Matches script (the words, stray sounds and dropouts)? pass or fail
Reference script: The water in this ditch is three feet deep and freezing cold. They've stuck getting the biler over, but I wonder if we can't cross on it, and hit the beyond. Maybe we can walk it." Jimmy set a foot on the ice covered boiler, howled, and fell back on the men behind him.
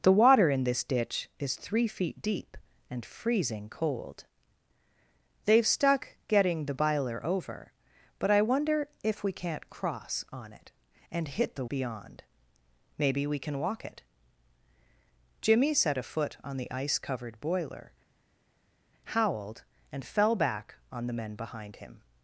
pass